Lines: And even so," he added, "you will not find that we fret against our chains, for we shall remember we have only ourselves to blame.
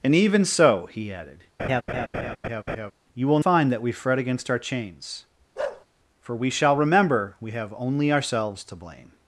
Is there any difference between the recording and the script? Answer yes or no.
yes